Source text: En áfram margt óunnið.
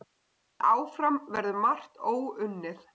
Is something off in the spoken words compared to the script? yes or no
yes